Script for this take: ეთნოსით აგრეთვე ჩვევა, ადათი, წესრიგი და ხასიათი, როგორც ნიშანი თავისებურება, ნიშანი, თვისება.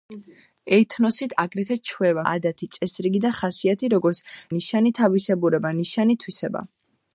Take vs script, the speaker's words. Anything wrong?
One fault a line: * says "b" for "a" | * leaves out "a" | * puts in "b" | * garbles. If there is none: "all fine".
all fine